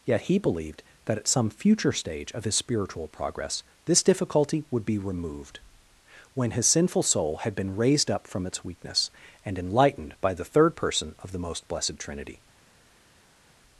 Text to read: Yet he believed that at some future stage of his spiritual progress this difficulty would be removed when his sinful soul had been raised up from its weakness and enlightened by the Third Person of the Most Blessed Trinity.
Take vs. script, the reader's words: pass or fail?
pass